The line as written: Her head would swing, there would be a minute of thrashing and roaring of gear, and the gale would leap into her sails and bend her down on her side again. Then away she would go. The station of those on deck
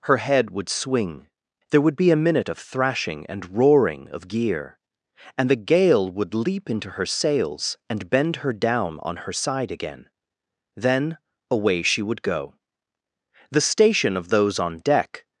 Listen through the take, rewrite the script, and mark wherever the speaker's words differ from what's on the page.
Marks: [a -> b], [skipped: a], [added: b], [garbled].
Her head would swing, there would be a minute of thrashing and roaring of gear, and the gale would leap into her sails and bend her down on her side again. Then away she would go. The station of those on deck